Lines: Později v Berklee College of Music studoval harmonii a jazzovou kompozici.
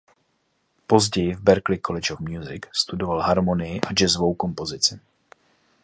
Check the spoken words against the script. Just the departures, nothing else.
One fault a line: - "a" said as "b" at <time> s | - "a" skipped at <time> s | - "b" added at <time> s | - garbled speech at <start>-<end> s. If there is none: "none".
none